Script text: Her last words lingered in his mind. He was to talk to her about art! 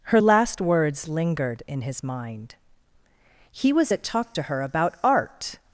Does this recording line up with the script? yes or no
no